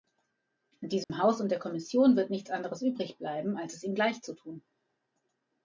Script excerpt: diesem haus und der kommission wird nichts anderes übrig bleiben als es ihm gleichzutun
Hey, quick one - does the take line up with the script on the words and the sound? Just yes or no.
no